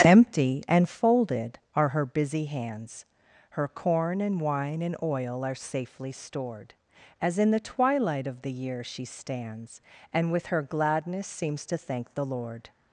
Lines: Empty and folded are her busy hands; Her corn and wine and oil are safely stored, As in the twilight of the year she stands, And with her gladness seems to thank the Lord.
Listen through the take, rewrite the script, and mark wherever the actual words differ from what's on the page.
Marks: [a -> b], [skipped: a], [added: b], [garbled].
Empty and folded are her busy hands; Her corn and wine and oil are safely stored, As in the twilight of the year she stands, And with her gladness seems to thank the Lord.